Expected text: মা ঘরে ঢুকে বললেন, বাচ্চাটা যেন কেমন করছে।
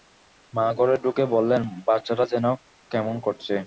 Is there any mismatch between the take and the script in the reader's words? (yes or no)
no